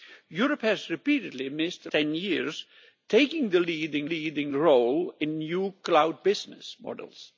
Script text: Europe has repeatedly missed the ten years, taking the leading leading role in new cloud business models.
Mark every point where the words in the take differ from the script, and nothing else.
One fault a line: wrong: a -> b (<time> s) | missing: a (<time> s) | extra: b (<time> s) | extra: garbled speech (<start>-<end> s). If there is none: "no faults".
no faults